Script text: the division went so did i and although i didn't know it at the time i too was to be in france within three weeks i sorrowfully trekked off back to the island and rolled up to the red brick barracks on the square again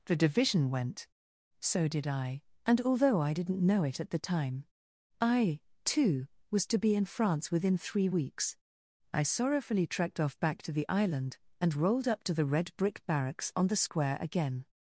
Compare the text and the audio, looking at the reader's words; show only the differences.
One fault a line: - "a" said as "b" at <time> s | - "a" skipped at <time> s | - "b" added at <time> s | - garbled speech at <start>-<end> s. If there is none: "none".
none